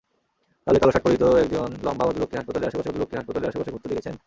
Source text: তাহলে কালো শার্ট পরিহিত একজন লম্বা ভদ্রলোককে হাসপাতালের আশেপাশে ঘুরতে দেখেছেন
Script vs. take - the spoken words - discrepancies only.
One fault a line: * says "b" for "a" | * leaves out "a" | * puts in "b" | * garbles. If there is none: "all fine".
* puts in "ভদ্রলোককে হাসপাতালের আশেপাশে"